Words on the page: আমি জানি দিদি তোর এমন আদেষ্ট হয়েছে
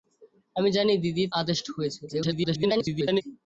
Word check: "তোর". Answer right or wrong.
wrong